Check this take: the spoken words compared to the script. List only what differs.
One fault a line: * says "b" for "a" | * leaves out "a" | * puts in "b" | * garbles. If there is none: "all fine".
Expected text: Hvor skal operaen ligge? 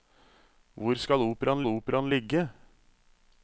* puts in "operaen"